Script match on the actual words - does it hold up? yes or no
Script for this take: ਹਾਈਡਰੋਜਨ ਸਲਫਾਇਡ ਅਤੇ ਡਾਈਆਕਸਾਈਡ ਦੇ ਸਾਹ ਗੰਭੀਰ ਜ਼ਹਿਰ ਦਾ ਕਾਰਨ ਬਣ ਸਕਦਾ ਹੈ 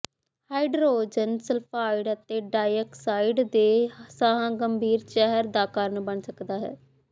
yes